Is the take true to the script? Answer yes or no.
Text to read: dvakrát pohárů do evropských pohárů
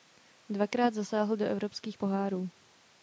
no